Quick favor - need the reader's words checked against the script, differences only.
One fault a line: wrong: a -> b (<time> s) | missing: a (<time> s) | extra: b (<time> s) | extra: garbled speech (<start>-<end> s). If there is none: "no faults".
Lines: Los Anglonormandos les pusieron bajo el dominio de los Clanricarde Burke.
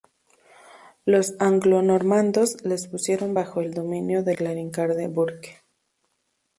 missing: los (4.4 s)